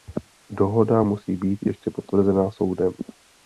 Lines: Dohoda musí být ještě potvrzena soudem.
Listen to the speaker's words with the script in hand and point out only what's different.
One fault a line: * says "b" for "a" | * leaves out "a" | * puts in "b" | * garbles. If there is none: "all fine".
all fine